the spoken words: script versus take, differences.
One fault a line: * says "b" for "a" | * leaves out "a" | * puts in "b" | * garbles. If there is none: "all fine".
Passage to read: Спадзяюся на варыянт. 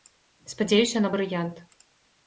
all fine